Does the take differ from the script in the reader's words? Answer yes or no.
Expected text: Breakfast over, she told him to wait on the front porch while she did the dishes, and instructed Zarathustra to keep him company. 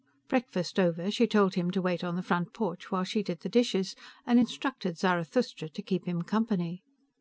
no